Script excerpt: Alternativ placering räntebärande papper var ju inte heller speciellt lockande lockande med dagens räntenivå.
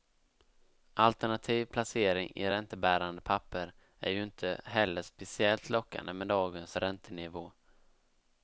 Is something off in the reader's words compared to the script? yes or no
yes